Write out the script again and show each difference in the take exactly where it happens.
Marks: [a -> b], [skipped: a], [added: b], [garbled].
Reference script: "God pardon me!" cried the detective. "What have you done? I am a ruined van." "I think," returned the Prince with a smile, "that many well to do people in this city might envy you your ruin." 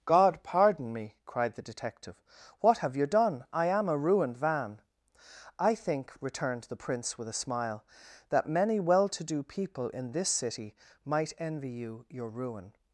"God pardon me!" cried the detective. "What have you done? I am a ruined van." "I think," returned the Prince with a smile, "that many well to do people in this city might envy you your ruin."